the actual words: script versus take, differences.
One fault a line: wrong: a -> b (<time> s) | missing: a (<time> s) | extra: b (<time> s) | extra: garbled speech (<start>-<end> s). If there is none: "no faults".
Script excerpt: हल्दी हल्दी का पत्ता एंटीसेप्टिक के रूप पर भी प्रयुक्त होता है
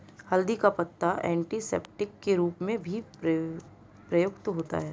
missing: हल्दी (0.6 s)
wrong: पर -> में (2.6 s)